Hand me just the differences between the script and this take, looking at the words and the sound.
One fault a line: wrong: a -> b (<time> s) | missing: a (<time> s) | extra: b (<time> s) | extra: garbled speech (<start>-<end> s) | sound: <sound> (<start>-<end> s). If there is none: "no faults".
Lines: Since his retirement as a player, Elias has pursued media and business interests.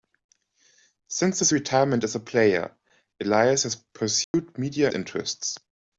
sound: dropout (4.2-4.3 s)
missing: and business (4.9 s)